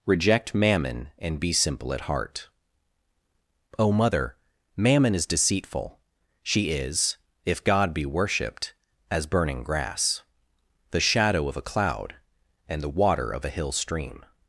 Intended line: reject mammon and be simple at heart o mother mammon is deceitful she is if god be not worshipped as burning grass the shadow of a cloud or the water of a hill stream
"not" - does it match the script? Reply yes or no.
no